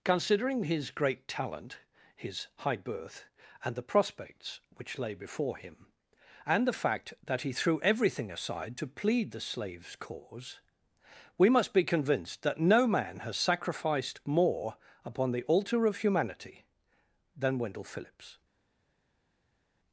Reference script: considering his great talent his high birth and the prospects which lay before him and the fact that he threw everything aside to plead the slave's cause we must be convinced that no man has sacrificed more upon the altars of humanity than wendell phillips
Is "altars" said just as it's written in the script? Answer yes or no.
no